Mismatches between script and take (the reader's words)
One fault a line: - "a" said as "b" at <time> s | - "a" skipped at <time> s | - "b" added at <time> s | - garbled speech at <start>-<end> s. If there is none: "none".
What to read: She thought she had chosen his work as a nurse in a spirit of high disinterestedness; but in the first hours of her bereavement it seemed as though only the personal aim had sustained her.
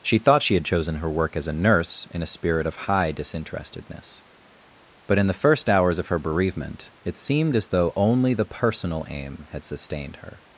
- "his" said as "her" at 0.9 s